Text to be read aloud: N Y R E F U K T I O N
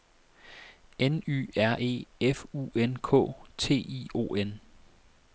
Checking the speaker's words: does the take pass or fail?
fail